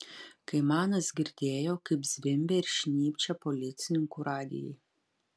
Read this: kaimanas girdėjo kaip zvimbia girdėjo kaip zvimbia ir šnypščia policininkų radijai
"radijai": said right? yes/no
yes